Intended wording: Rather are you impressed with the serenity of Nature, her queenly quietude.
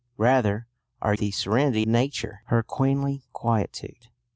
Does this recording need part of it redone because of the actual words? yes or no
yes